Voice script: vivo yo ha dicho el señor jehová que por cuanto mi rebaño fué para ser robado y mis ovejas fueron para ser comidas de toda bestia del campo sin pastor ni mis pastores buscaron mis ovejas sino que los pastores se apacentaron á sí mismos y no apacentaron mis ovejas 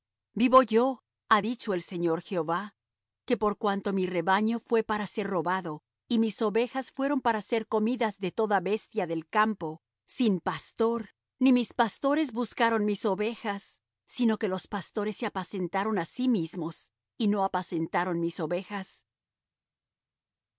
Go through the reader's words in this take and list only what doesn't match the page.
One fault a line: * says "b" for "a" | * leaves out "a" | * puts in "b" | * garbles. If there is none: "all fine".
all fine